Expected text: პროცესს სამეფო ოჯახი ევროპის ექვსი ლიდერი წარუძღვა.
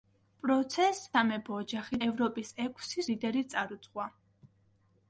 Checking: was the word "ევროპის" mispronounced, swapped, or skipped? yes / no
no